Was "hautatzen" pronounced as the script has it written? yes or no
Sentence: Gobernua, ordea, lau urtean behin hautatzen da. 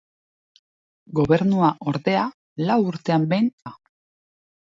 no